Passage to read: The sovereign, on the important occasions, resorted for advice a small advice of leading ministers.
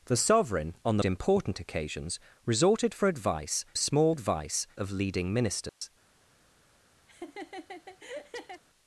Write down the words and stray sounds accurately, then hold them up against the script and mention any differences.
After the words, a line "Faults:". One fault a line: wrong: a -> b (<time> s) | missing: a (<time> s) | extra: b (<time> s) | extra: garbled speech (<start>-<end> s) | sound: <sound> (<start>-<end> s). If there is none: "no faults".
The sovereign, on the important occasions, resorted for advice a small advice of leading ministers.
Faults:
sound: dropout (5.7-5.8 s)
sound: laugh (7.1-8.6 s)